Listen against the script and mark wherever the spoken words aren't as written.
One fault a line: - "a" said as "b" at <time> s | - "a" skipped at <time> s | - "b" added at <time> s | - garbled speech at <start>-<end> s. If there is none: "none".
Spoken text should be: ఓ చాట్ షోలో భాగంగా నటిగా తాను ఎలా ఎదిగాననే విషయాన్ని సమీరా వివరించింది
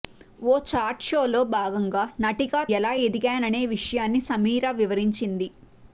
- "తాను" skipped at 2.6 s